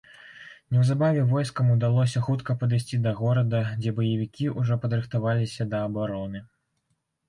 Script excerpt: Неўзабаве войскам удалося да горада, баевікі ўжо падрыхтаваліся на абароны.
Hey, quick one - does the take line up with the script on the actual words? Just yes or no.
no